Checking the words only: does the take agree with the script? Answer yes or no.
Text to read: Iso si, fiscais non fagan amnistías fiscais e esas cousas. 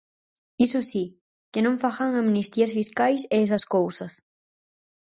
no